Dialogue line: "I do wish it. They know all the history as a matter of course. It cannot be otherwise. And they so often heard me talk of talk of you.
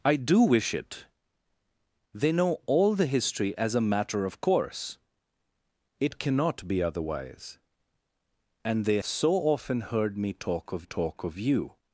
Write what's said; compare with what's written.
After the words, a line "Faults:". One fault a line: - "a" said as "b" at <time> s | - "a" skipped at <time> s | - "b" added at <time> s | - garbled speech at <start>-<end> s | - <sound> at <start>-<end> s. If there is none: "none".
"I do wish it. They know all the history as a matter of course. It cannot be otherwise. And they so often heard me talk of talk of you.
Faults:
none